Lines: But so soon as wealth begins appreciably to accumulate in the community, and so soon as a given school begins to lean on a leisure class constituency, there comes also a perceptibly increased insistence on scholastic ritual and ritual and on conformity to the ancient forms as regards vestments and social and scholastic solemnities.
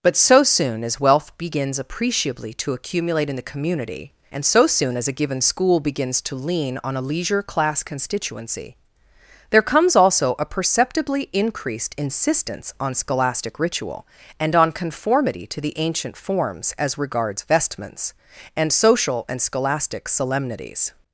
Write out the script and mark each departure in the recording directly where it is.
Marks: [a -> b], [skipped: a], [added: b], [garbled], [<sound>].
But so soon as wealth begins appreciably to accumulate in the community, and so soon as a given school begins to lean on a leisure class constituency, there comes also a perceptibly increased insistence on scholastic ritual and [skipped: ritual and] on conformity to the ancient forms as regards vestments and social and scholastic solemnities.